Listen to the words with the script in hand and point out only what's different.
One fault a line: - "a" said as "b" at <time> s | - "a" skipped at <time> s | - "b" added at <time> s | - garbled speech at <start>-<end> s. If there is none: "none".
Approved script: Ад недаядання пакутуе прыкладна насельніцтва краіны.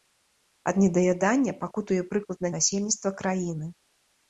none